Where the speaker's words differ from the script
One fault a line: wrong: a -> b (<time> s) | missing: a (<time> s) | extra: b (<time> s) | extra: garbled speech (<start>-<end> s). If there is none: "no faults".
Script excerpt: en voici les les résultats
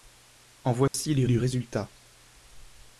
no faults